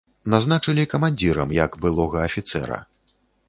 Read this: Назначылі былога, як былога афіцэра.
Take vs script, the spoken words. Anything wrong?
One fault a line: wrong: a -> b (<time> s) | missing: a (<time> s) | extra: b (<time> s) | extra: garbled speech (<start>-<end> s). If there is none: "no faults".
wrong: былога -> камандзірам (0.9 s)